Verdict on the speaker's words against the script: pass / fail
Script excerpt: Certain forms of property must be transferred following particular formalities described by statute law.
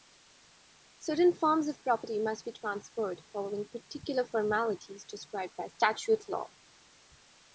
pass